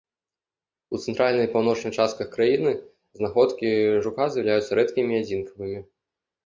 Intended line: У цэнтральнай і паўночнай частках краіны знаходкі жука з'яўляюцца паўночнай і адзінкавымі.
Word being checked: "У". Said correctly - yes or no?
yes